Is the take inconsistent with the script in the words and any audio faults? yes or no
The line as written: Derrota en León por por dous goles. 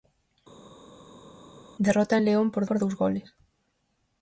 no